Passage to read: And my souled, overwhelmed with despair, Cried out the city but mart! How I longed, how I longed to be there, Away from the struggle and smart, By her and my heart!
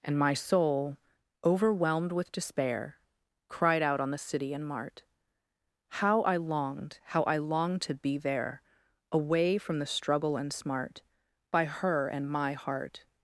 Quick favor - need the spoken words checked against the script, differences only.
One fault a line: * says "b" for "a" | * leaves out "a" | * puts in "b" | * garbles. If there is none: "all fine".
* says "soul" for "souled"
* puts in "on"
* says "and" for "but"